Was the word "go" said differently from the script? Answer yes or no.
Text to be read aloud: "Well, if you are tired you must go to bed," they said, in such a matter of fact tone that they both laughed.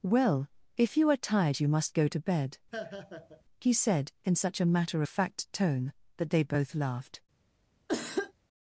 no